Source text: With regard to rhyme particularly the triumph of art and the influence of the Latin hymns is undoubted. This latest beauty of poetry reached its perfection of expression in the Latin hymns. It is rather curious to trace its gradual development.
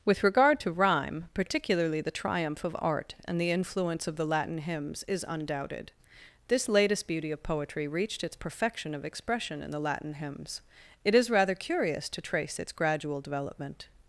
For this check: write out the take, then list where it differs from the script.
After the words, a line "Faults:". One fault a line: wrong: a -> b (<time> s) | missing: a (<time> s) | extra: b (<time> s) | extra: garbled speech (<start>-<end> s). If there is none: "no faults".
With regard to rhyme particularly the triumph of art and the influence of the Latin hymns is undoubted. This latest beauty of poetry reached its perfection of expression in the Latin hymns. It is rather curious to trace its gradual development.
Faults:
no faults